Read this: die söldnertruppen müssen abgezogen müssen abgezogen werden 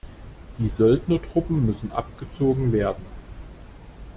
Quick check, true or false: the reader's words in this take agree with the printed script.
false